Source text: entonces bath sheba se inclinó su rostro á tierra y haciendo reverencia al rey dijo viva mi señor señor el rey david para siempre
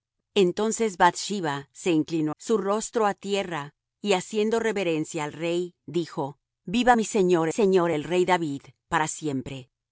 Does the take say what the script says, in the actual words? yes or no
yes